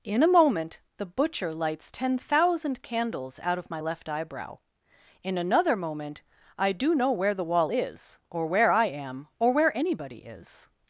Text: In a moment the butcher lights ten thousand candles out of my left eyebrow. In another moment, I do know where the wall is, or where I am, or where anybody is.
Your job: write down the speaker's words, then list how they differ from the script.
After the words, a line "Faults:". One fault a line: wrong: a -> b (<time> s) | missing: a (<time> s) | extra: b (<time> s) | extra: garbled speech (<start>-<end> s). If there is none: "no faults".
In a moment the butcher lights ten thousand candles out of my left eyebrow. In another moment, I do know where the wall is, or where I am, or where anybody is.
Faults:
no faults